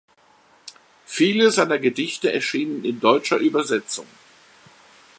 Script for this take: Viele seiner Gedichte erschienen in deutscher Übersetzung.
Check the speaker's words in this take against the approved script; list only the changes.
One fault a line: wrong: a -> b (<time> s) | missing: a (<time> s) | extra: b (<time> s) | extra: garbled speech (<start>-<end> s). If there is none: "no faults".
no faults